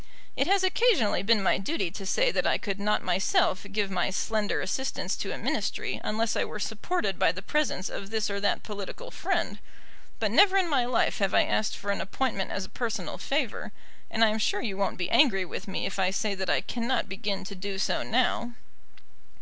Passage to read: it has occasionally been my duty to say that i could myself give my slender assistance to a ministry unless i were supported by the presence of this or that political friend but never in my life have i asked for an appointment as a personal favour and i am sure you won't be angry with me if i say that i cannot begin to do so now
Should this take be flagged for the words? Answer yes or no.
yes